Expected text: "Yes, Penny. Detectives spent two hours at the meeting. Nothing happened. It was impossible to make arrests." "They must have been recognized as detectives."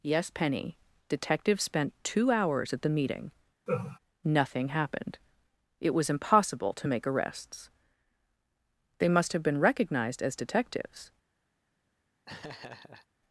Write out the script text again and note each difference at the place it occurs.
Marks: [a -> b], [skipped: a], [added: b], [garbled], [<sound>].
"Yes, Penny. Detectives spent two hours at the meeting. [laugh] Nothing happened. It was impossible to make arrests." "They must have been recognized as detectives." [laugh]